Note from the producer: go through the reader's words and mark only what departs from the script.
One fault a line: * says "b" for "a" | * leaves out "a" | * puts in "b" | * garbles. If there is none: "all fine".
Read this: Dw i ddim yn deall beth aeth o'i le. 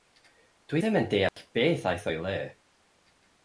all fine